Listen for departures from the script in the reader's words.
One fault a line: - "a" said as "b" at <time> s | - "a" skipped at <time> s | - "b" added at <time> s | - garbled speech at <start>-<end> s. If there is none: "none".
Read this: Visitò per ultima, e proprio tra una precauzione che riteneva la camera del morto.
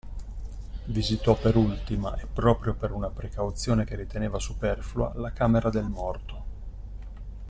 - "tra" said as "per" at 2.7 s
- "superflua" added at 4.4 s